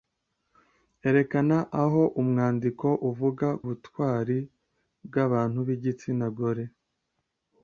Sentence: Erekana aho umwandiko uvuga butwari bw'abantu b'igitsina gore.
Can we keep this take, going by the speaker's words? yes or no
yes